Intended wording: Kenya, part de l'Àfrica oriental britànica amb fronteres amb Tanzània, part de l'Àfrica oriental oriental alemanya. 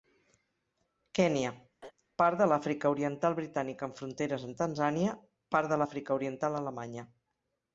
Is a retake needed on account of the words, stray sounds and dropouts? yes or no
yes